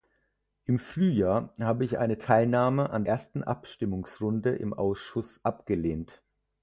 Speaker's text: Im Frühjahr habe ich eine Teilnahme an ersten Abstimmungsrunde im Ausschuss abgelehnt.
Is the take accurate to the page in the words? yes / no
yes